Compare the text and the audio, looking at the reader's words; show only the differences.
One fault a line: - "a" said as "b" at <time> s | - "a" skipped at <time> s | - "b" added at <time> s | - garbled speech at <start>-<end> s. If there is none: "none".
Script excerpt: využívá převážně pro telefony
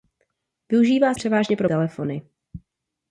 none